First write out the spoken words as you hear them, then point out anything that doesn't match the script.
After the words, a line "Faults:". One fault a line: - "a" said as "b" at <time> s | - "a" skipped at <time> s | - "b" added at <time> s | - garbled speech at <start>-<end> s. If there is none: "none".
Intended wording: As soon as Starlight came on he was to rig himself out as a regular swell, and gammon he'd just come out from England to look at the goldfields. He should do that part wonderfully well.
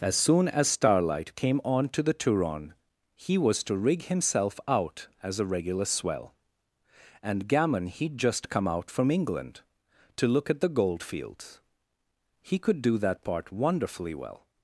As soon as Starlight came on to the Turon he was to rig himself out as a regular swell, and gammon he'd just come out from England to look at the goldfields. He could do that part wonderfully well.
Faults:
- "to the Turon" added at 1.9 s
- "should" said as "could" at 12.6 s